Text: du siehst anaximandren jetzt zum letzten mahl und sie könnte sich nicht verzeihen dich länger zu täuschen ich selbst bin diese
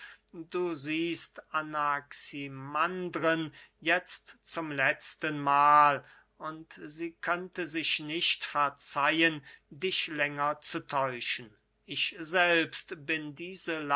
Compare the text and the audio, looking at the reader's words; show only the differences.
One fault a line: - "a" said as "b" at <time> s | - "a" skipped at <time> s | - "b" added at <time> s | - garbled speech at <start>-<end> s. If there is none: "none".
none